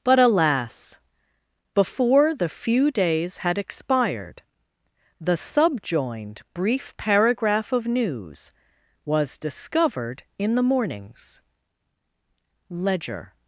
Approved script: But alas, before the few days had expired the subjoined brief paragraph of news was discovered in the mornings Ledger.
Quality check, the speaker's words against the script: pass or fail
pass